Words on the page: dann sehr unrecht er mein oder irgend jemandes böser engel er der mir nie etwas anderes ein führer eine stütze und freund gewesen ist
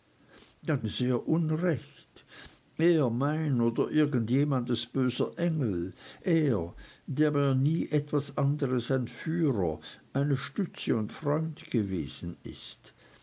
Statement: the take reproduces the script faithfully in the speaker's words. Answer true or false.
true